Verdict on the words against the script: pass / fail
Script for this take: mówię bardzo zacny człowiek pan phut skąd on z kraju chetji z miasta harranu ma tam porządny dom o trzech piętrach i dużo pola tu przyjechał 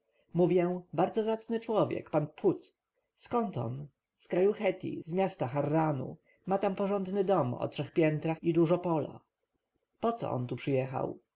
fail